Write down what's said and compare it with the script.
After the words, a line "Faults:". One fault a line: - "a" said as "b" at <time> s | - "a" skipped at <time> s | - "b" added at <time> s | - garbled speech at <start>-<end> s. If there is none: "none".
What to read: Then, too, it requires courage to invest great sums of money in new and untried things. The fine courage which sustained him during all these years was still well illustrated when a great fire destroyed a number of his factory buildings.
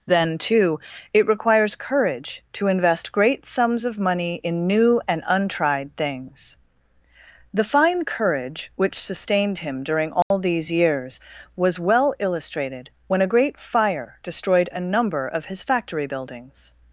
Then, too, it requires courage to invest great sums of money in new and untried things. The fine courage which sustained him during all these years was well illustrated when a great fire destroyed a number of his factory buildings.
Faults:
- "still" skipped at 11.8 s